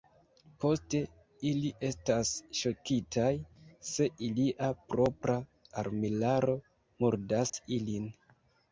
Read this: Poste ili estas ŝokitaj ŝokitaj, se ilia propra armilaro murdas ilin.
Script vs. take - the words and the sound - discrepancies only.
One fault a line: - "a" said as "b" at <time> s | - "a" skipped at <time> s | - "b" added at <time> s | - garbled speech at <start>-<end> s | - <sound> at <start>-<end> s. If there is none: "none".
- "ŝokitaj" skipped at 3.3 s
- dropout at 7.5-7.5 s